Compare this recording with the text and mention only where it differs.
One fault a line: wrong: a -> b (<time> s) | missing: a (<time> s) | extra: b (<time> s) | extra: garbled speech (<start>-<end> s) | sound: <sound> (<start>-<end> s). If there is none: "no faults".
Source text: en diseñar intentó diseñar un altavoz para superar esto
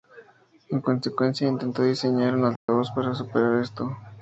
wrong: diseñar -> consecuencia (0.8 s)
sound: dropout (2.6-2.7 s)